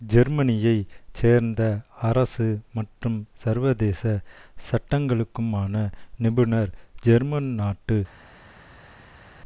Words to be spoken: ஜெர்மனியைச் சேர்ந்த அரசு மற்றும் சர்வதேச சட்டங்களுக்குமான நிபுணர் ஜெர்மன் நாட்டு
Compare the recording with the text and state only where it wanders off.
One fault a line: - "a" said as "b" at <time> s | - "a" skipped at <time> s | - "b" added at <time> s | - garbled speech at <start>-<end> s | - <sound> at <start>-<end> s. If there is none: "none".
none